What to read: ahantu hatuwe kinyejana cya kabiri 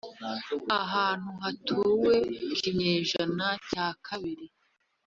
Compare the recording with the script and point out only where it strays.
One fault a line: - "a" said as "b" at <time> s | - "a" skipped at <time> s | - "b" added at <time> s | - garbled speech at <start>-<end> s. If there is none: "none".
none